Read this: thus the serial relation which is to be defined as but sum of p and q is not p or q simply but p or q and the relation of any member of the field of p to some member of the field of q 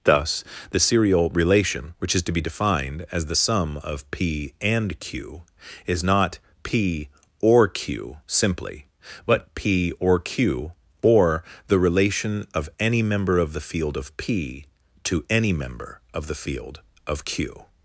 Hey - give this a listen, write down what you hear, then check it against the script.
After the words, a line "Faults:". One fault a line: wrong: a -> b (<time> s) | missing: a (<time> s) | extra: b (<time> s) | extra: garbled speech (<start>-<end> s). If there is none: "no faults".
thus the serial relation which is to be defined as the sum of p and q is not p or q simply but p or q or the relation of any member of the field of p to any member of the field of q
Faults:
wrong: but -> the (3.2 s)
wrong: and -> or (11.0 s)
wrong: some -> any (15.3 s)